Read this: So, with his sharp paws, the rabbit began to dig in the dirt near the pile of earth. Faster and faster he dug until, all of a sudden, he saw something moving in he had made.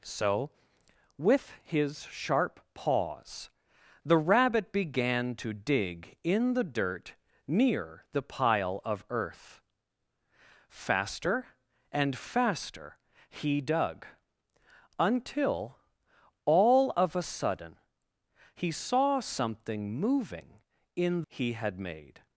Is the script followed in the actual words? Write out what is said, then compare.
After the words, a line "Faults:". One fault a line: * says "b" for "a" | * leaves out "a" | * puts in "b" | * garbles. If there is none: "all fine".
So, with his sharp paws, the rabbit began to dig in the dirt near the pile of earth. Faster and faster he dug until, all of a sudden, he saw something moving in he had made.
Faults:
all fine